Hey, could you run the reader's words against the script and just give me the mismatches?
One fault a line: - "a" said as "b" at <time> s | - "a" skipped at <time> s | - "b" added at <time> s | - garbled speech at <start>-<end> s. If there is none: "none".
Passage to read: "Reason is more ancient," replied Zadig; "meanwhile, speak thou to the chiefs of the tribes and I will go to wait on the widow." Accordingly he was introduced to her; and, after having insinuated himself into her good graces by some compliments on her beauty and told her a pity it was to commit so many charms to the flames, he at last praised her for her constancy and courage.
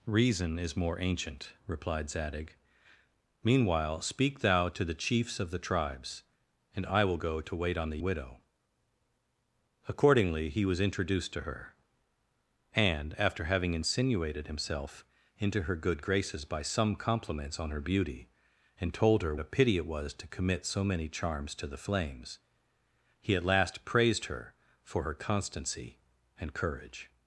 none